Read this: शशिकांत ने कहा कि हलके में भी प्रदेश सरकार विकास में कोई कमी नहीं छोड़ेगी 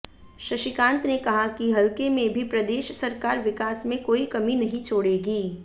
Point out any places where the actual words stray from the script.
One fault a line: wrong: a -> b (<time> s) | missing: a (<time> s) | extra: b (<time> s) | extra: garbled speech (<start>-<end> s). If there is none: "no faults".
no faults